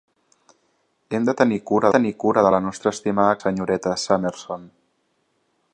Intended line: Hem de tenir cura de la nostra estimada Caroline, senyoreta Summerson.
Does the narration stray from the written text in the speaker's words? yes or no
yes